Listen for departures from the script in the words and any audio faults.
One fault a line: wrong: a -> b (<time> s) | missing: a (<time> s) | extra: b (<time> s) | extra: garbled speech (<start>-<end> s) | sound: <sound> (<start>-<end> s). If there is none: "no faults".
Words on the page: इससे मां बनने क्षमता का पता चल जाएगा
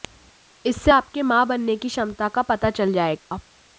extra: आपके (0.9 s)
extra: की (1.8 s)
sound: dropout (3.2-3.3 s)